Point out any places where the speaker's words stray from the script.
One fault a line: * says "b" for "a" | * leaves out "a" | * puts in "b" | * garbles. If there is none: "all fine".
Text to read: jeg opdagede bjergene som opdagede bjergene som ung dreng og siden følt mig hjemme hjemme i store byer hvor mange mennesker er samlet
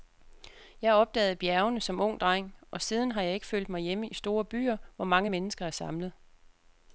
* leaves out "opdagede bjergene som"
* puts in "har jeg ikke"
* leaves out "hjemme"